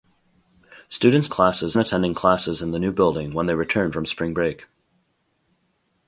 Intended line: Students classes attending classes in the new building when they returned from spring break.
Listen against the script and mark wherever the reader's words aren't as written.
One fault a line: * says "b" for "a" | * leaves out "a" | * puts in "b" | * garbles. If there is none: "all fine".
all fine